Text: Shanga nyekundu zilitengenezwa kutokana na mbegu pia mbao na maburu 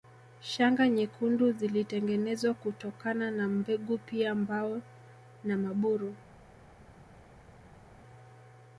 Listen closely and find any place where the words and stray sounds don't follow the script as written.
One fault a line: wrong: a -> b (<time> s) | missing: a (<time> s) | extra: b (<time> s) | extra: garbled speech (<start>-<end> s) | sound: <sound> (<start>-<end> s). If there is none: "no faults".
no faults